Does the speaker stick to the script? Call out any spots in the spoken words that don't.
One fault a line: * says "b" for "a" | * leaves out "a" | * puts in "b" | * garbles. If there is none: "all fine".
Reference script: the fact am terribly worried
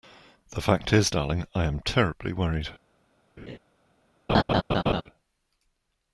* puts in "is darling i"